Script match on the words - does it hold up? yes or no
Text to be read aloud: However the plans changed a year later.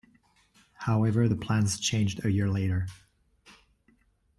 yes